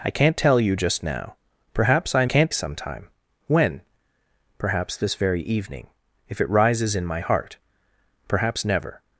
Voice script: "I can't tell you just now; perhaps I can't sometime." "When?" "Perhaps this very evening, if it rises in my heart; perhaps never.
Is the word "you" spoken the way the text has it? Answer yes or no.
yes